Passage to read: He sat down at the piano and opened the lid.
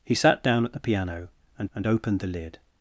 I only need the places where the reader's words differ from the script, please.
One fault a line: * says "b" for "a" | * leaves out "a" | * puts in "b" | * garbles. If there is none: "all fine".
* puts in "and"